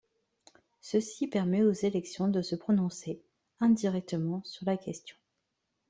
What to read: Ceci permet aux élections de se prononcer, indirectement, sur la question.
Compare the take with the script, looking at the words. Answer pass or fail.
pass